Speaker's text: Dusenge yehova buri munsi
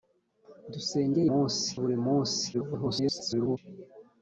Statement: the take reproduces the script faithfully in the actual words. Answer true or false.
false